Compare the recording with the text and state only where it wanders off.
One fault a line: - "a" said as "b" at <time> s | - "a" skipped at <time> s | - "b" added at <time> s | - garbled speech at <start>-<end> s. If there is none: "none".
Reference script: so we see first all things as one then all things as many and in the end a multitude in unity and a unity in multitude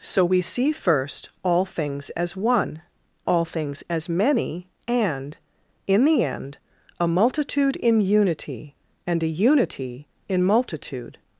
- "then" skipped at 2.8 s